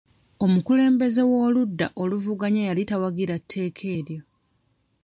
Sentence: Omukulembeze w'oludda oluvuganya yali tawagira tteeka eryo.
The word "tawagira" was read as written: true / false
true